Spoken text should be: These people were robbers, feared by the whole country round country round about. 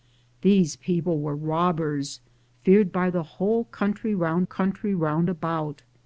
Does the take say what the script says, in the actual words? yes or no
yes